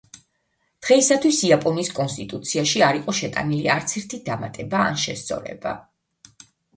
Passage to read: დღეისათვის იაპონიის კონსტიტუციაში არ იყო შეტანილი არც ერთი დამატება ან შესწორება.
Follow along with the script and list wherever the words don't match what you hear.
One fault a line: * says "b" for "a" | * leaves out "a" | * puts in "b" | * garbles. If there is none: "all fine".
all fine